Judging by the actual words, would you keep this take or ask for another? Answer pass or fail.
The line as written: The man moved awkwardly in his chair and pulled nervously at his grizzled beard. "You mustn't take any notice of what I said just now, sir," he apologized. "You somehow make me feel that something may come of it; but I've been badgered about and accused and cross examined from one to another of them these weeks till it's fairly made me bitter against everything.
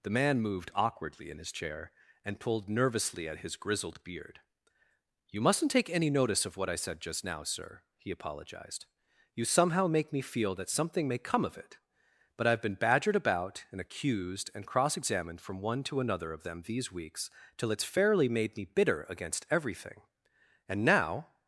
fail